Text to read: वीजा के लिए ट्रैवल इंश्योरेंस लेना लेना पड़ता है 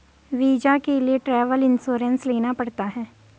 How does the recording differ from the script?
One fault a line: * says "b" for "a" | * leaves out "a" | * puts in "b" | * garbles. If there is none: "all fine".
* leaves out "लेना"